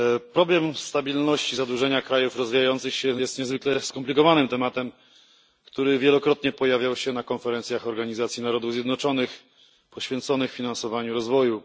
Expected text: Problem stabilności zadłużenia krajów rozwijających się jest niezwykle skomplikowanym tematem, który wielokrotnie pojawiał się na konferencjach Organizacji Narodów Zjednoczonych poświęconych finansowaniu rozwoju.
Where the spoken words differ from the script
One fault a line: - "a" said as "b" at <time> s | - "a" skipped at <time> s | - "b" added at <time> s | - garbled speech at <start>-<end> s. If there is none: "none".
none